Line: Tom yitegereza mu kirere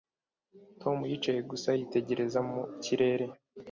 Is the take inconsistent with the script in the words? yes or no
yes